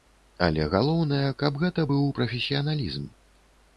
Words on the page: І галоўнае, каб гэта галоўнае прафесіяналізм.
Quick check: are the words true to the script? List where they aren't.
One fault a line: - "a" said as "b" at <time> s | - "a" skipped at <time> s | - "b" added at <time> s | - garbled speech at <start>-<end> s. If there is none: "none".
- "І" said as "Але" at 0.5 s
- "галоўнае" said as "быў" at 1.9 s